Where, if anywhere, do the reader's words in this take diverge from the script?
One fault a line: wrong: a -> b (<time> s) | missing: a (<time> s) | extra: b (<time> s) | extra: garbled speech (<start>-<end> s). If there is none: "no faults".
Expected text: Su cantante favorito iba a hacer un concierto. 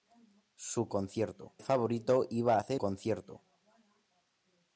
wrong: cantante -> concierto (0.9 s)
missing: un (2.8 s)